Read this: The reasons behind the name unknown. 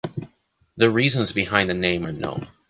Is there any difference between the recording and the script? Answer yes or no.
no